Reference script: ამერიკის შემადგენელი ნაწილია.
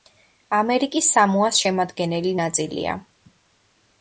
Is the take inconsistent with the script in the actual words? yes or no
yes